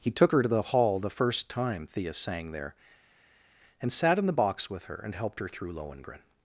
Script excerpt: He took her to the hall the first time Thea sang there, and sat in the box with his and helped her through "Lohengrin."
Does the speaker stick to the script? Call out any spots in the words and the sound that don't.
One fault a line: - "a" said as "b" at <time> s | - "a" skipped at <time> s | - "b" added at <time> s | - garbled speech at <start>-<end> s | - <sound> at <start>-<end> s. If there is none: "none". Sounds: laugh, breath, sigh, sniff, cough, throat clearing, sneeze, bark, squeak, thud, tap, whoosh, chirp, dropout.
- "his" said as "her" at 4.8 s